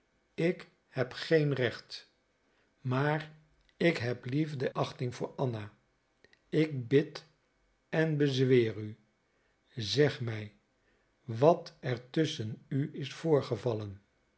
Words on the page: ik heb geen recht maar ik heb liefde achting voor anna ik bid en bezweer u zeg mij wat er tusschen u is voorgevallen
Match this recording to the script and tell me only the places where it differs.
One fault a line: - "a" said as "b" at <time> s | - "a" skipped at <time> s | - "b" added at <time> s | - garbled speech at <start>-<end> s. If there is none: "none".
none